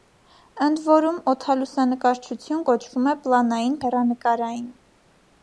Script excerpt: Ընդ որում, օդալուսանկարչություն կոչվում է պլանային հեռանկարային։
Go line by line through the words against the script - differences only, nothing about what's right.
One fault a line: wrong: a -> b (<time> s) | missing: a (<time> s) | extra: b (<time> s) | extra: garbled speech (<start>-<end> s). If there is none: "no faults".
no faults